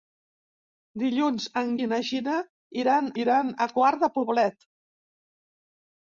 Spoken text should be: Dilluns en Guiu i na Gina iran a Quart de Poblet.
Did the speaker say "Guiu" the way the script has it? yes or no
no